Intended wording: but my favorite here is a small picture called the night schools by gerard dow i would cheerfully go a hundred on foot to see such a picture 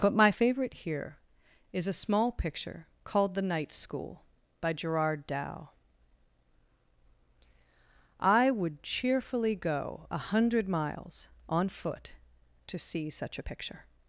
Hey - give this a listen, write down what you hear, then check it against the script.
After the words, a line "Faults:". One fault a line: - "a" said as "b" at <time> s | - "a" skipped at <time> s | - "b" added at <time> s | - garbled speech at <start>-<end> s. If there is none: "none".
but my favorite here is a small picture called the night school by gerard dow i would cheerfully go a hundred miles on foot to see such a picture
Faults:
- "schools" said as "school" at 3.7 s
- "miles" added at 10.7 s